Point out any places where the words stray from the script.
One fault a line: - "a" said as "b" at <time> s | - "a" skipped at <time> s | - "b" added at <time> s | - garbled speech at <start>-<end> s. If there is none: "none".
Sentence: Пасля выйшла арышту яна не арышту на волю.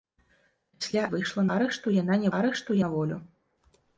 none